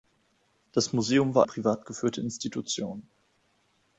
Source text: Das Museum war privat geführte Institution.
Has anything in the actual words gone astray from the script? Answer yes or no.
no